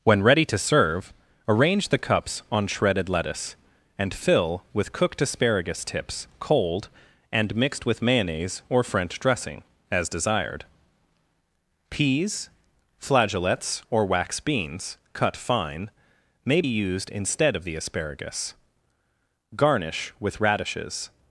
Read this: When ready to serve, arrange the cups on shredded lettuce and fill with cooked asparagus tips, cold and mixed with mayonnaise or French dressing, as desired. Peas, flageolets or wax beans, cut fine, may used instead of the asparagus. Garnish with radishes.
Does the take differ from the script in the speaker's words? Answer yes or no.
no